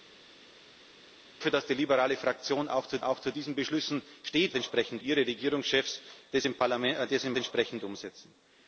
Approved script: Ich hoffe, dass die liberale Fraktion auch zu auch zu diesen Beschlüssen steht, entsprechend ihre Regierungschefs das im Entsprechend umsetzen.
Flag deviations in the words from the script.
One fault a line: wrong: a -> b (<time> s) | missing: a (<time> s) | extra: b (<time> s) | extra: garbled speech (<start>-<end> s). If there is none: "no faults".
no faults